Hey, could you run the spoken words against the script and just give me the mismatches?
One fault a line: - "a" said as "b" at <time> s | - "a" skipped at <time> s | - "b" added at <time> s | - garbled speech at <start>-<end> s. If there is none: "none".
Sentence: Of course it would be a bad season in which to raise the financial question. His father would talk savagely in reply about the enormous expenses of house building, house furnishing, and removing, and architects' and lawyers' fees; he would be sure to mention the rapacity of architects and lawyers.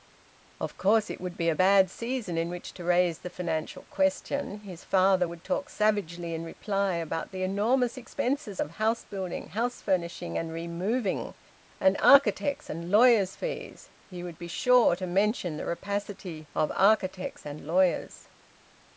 none